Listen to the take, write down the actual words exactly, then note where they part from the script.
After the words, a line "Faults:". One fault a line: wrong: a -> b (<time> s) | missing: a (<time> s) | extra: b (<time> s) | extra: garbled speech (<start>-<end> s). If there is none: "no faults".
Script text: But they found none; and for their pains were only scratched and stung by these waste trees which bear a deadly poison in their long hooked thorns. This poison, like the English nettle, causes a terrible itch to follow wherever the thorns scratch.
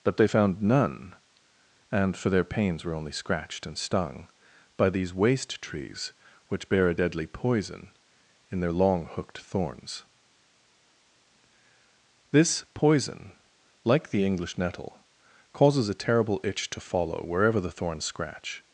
But they found none; and for their pains were only scratched and stung by these waste trees which bear a deadly poison in their long hooked thorns. This poison, like the English nettle, causes a terrible itch to follow wherever the thorns scratch.
Faults:
no faults